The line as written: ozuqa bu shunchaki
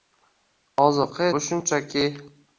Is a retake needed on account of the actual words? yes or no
no